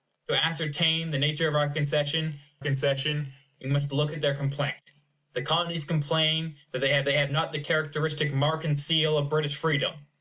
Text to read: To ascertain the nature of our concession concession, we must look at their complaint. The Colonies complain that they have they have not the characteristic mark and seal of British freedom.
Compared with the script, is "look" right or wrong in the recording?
right